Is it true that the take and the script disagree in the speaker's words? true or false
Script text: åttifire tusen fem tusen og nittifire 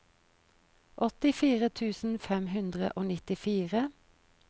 true